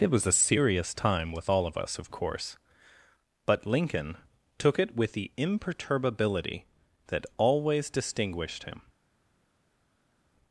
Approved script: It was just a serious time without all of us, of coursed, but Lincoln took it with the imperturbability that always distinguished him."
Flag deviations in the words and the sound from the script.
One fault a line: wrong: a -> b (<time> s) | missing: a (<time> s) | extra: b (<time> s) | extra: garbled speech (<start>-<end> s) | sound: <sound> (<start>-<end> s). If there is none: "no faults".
missing: just (0.2 s)
wrong: without -> with (1.3 s)
wrong: coursed -> course (2.1 s)